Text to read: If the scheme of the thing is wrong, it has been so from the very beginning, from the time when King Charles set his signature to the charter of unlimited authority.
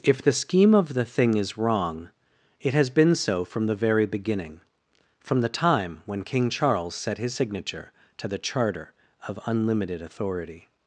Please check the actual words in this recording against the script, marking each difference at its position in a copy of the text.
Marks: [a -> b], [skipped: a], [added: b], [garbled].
If the scheme of the thing is wrong, it has been so from the very beginning, from the time when King Charles set his signature to the charter of unlimited authority.